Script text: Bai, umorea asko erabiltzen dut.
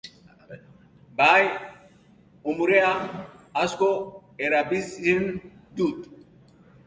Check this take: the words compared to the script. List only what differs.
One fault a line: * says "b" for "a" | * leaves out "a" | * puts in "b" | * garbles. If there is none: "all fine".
all fine